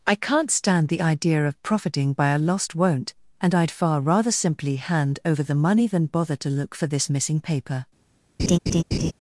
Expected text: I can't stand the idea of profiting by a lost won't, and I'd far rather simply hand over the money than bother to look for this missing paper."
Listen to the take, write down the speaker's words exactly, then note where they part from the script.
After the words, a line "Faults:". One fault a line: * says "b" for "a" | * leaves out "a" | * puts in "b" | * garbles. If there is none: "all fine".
I can't stand the idea of profiting by a lost won't, and I'd far rather simply hand over the money than bother to look for this missing paper."
Faults:
all fine